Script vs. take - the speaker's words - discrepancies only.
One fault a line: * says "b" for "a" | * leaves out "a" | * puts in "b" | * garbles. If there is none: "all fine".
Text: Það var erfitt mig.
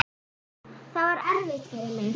* puts in "fyrir"